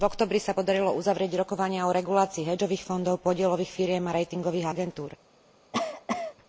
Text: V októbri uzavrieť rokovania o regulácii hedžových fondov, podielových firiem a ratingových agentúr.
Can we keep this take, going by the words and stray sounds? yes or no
no